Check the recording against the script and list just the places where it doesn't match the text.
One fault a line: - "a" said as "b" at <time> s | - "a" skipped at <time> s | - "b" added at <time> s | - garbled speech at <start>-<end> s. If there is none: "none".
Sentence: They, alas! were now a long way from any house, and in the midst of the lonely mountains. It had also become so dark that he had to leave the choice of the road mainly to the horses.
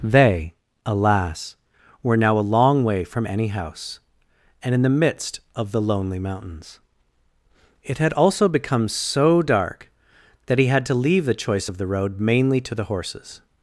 none